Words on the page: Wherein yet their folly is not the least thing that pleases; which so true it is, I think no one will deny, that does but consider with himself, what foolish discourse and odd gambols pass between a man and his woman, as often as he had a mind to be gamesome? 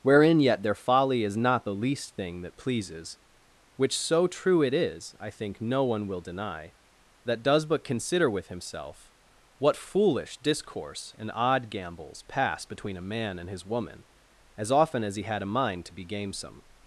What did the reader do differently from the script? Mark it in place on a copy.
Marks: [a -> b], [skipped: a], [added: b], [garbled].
Wherein yet their folly is not the least thing that pleases; which so true it is, I think no one will deny, that does but consider with himself, what foolish discourse and odd gambols pass between a man and his woman, as often as he had a mind to be gamesome?